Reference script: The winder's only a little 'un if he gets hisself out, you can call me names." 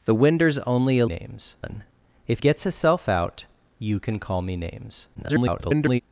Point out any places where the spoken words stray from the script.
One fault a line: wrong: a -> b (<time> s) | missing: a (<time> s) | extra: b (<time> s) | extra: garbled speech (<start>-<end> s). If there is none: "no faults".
wrong: little -> names (1.0 s)
missing: he (2.4 s)
extra: garbled speech (5.1-6.0 s)